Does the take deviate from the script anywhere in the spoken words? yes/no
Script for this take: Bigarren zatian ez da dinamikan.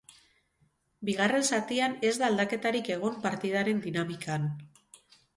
yes